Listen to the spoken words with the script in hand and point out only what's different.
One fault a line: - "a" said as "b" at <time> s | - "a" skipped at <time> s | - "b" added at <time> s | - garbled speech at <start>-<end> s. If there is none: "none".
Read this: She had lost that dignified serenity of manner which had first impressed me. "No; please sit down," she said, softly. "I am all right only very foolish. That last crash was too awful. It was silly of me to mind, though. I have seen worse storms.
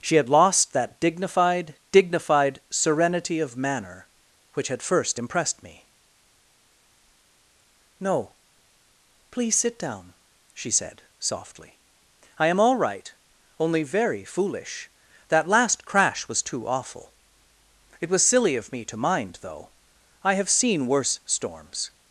- "dignified" added at 1.9 s